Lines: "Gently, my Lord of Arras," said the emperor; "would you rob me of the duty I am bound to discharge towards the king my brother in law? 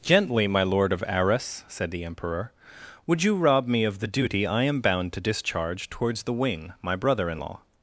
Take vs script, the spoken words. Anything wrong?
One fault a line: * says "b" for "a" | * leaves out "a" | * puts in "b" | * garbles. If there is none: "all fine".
* says "wing" for "king"